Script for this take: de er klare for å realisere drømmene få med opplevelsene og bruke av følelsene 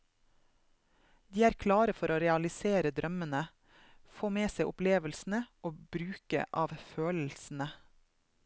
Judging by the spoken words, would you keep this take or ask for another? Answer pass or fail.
fail